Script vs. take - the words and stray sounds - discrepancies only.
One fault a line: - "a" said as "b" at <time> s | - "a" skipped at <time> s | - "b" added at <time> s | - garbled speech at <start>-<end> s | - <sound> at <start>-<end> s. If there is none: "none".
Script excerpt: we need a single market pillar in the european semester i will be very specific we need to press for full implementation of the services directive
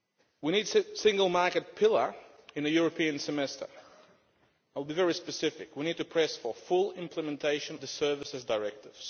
- "of" skipped at 7.8 s